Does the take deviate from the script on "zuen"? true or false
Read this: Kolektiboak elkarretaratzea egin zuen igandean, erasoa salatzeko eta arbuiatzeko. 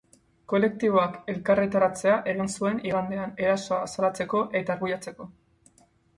false